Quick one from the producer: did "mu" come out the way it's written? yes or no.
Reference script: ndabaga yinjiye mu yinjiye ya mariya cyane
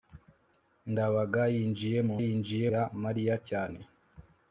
yes